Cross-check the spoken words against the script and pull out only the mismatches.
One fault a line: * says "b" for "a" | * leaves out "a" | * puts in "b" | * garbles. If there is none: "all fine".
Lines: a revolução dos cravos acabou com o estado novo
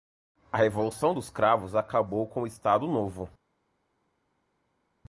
all fine